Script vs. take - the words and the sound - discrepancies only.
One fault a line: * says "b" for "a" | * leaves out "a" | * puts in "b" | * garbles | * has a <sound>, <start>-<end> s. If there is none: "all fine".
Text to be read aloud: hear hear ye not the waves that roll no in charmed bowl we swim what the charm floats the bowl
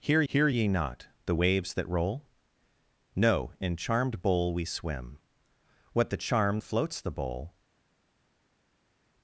all fine